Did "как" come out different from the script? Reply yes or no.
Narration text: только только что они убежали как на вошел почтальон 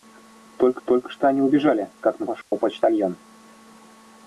no